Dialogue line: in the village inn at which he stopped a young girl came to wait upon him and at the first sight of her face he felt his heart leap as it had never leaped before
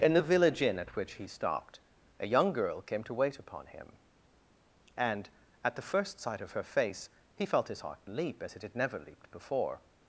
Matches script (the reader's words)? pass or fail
pass